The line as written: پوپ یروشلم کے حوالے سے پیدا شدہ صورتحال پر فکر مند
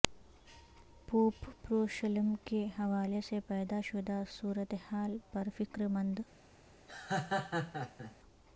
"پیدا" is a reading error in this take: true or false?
false